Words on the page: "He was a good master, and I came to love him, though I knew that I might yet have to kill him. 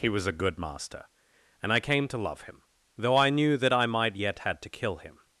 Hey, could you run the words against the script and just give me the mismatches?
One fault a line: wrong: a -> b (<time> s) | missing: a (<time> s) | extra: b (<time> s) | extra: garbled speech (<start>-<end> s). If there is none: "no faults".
wrong: have -> had (4.4 s)